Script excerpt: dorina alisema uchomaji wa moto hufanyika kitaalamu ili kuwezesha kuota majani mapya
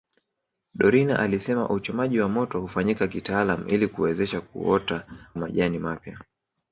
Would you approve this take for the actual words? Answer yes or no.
yes